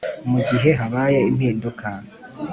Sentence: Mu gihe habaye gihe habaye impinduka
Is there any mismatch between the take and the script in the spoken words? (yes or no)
yes